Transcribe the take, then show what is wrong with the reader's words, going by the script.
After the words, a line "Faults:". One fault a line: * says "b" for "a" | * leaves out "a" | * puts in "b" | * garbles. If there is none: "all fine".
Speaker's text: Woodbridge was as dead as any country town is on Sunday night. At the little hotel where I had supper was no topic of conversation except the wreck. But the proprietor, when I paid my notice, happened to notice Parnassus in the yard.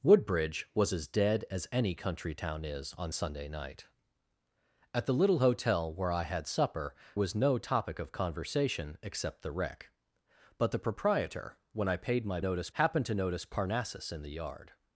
Woodbridge was as dead as any country town is on Sunday night. At the little hotel where I had supper was no topic of conversation except the wreck. But the proprietor, when I paid my notice, happened to notice Parnassus in the yard.
Faults:
all fine